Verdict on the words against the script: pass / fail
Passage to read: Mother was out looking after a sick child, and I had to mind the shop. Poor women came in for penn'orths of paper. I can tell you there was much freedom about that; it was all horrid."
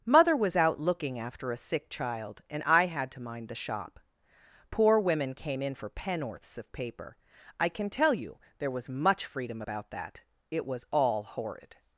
pass